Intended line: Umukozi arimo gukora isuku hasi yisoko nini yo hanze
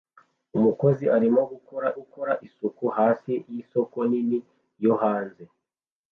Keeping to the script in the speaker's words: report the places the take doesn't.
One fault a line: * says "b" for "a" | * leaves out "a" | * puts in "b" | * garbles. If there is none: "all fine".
* puts in "gukora"